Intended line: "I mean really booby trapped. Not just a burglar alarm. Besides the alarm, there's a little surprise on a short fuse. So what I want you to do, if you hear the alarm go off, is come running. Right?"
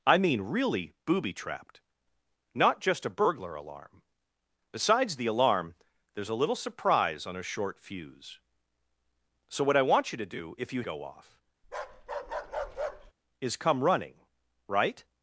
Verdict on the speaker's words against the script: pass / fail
fail